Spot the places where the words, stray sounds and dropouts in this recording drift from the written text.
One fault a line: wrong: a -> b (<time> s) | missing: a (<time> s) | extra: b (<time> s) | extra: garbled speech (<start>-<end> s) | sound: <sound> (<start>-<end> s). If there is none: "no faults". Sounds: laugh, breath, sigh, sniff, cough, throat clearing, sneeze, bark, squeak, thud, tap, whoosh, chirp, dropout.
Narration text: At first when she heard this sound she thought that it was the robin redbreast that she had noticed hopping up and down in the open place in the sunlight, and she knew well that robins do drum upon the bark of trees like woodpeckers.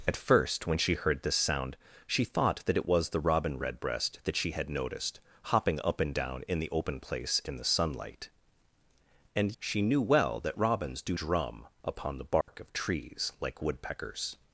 sound: dropout (12.4-12.5 s)